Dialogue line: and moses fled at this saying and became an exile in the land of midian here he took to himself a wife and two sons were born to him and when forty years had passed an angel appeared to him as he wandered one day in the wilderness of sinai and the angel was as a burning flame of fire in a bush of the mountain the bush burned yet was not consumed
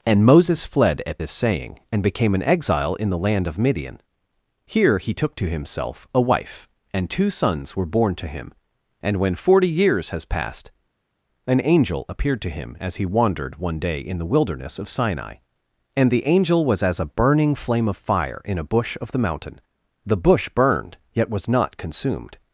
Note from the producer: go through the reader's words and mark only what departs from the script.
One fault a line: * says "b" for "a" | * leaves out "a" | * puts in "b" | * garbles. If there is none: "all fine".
* says "has" for "had"